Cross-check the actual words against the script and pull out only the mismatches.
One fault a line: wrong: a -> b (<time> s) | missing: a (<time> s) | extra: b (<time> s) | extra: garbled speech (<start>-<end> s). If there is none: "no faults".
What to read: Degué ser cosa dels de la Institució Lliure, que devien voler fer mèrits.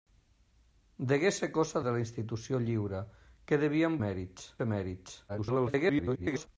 missing: dels (1.8 s)
wrong: voler -> mèrits (4.0 s)
extra: garbled speech (5.3-6.5 s)